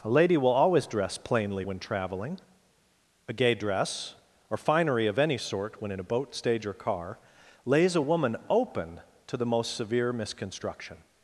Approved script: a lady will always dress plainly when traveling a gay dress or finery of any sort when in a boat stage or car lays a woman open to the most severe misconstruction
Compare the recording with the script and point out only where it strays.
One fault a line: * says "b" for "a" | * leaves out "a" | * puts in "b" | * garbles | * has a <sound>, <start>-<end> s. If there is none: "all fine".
all fine